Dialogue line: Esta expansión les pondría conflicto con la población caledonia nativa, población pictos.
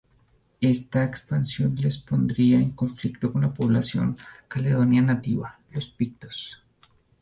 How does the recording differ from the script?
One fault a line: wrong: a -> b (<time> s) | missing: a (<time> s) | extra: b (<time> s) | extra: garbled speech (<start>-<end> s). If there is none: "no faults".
extra: en (2.6 s)
wrong: población -> los (5.7 s)